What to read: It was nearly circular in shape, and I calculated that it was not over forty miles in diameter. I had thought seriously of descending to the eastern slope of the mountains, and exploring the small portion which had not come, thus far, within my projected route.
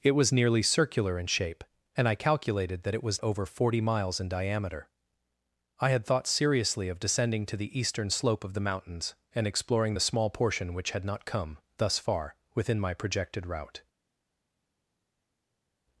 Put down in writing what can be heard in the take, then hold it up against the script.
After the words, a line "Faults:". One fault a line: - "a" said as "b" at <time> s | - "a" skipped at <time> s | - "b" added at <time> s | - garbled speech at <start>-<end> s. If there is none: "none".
It was nearly circular in shape, and I calculated that it was over forty miles in diameter. I had thought seriously of descending to the eastern slope of the mountains, and exploring the small portion which had not come, thus far, within my projected route.
Faults:
- "not" skipped at 3.2 s